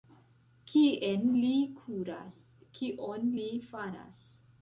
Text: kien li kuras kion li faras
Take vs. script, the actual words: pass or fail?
pass